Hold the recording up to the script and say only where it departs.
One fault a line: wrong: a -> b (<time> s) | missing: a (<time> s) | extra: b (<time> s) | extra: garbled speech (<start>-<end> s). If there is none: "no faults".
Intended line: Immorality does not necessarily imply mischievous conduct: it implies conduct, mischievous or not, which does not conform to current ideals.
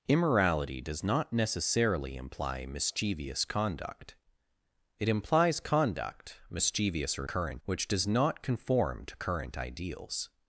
wrong: not -> current (7.2 s)